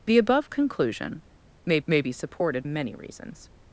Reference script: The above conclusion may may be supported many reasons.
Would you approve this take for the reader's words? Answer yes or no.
yes